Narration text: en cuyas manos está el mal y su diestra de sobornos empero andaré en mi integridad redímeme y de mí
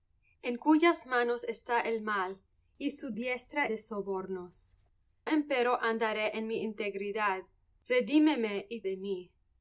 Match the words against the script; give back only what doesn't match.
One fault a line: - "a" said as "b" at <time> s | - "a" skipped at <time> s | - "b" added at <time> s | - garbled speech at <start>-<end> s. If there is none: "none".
none